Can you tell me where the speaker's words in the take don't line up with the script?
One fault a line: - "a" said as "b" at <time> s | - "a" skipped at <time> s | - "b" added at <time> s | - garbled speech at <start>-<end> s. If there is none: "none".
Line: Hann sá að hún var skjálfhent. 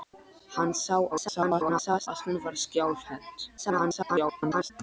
- garbled speech at 1.1-2.1 s
- garbled speech at 3.6-4.7 s